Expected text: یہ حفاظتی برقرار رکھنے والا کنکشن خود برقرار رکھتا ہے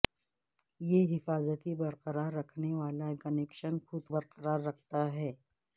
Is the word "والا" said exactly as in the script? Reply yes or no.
yes